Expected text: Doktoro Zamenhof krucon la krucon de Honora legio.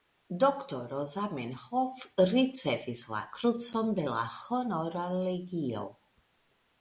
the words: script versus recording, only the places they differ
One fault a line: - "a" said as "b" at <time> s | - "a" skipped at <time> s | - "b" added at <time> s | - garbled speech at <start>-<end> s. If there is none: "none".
- "krucon" said as "ricevis" at 2.3 s
- "la" added at 4.1 s